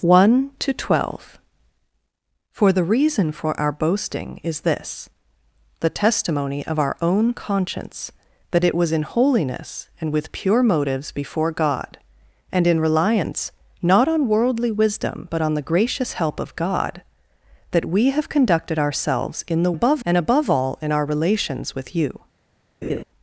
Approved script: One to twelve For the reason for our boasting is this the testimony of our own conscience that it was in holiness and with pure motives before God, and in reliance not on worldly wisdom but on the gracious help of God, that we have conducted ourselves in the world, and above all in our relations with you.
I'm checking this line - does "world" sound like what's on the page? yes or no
no